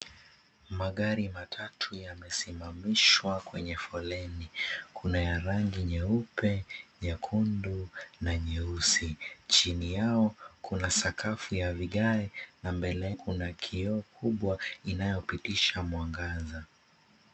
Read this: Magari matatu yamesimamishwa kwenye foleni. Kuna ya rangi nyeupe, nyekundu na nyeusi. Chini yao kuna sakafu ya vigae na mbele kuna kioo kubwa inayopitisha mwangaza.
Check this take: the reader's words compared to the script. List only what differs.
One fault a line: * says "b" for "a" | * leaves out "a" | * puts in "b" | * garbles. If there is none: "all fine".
all fine